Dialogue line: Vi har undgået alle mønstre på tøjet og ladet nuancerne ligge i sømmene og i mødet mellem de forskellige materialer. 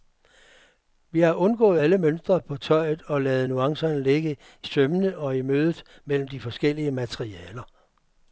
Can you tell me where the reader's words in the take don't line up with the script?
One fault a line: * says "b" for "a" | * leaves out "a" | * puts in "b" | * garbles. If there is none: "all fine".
all fine